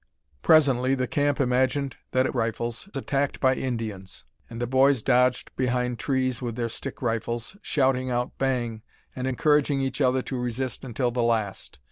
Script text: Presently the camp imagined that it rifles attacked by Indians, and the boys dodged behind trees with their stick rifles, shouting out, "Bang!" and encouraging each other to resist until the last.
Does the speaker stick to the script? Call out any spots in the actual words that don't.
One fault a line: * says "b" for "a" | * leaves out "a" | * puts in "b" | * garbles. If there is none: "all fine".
all fine